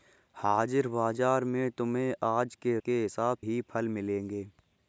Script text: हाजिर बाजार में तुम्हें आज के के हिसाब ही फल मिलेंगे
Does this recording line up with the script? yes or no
yes